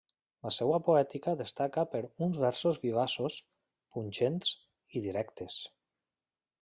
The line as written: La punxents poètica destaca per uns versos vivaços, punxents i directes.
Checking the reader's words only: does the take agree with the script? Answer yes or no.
no